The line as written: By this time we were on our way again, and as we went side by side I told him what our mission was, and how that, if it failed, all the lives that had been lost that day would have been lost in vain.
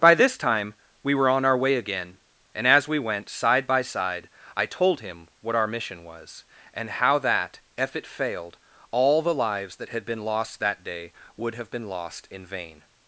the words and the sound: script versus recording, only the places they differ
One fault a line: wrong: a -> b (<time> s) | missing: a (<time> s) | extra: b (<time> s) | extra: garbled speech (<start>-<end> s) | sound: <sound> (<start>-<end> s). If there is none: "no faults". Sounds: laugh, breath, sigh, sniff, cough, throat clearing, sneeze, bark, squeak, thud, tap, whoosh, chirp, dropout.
no faults